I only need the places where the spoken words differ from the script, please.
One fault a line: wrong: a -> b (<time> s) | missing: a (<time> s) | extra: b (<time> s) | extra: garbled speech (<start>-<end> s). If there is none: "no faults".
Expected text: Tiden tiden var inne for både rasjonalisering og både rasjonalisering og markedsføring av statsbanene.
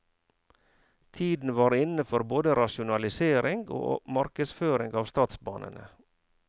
missing: tiden (1.5 s)
missing: både rasjonalisering og (4.0 s)